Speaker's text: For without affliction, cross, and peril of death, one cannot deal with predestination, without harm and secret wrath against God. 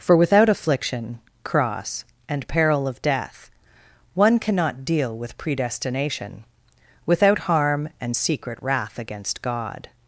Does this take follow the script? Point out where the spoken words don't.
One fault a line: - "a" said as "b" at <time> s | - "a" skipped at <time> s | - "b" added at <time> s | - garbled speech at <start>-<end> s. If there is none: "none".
none